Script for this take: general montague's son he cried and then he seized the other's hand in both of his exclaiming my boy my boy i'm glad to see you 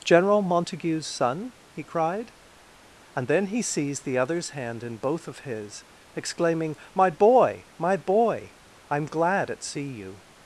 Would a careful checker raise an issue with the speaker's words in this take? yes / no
yes